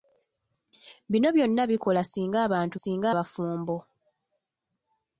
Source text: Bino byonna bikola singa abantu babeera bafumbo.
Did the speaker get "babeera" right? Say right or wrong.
wrong